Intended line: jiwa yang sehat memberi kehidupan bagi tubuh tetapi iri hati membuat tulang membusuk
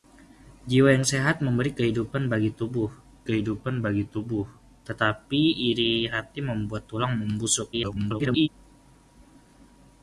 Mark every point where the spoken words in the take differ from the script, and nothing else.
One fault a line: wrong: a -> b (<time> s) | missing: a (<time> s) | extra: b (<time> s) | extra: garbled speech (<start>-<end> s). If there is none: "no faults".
extra: kehidupan bagi tubuh (3.3 s)
extra: garbled speech (7.7-8.5 s)